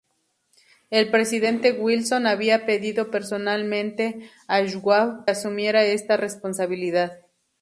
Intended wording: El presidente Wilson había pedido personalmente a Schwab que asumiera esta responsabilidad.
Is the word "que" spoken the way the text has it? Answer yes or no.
no